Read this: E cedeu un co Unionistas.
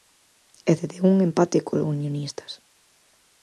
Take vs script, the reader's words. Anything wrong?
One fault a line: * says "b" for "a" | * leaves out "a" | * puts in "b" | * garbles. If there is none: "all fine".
* puts in "empate"